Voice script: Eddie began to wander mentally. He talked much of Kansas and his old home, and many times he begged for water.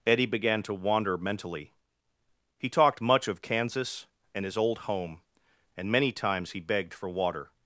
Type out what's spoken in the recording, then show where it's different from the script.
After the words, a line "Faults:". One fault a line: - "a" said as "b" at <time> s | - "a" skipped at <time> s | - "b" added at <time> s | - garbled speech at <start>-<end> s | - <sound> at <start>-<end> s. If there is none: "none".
Eddie began to wander mentally. He talked much of Kansas and his old home, and many times he begged for water.
Faults:
none